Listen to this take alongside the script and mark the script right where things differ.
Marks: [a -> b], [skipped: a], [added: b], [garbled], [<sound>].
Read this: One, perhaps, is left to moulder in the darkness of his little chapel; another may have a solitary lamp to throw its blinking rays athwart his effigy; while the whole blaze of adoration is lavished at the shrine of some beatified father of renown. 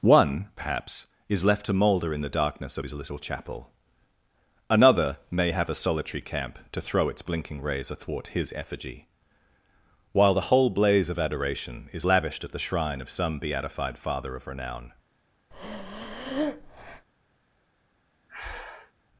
One, perhaps, is left to moulder in the darkness of his little chapel; another may have a solitary [lamp -> camp] to throw its blinking rays athwart his effigy; while the whole blaze of adoration is lavished at the shrine of some beatified father of renown. [breath] [breath]